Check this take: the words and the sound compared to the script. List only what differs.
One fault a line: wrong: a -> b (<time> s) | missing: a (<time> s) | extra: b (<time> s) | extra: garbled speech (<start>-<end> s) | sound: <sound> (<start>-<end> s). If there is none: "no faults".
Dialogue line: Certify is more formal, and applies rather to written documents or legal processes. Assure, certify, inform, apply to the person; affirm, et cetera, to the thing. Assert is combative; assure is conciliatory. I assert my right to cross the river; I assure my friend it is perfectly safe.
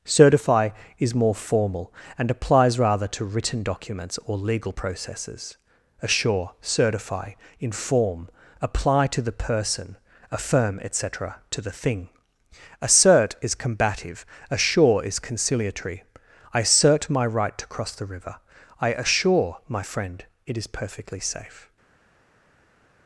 no faults